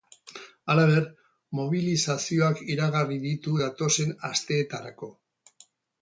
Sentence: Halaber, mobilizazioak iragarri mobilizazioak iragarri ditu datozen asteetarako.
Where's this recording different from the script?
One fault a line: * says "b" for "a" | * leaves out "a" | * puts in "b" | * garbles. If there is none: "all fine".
* leaves out "mobilizazioak iragarri"